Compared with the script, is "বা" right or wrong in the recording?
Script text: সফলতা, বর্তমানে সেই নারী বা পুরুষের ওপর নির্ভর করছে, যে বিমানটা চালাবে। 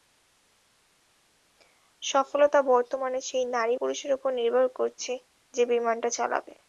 wrong